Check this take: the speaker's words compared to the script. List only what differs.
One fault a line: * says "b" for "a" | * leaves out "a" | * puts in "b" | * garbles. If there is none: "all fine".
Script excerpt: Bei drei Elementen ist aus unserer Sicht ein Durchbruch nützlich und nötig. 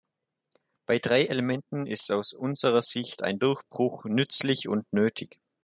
all fine